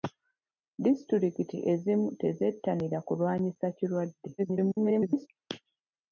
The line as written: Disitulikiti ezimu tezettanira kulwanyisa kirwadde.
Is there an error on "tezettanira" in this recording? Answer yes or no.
no